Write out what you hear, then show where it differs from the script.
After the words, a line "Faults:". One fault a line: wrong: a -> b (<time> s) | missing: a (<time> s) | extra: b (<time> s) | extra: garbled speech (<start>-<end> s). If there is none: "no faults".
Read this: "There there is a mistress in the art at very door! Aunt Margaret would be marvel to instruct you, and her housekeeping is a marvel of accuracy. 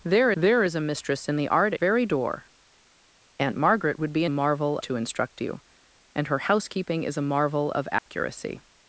"There there is a mistress in the art at very door! Aunt Margaret would be marvel to instruct you, and her housekeeping is a marvel of accuracy.
Faults:
no faults